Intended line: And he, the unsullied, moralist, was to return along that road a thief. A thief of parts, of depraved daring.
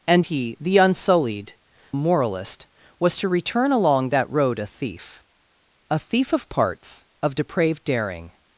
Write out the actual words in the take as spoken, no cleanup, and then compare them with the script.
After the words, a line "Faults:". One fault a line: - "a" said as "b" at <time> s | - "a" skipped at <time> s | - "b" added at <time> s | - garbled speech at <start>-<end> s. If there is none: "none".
And he, the unsullied, moralist, was to return along that road a thief. A thief of parts, of depraved daring.
Faults:
none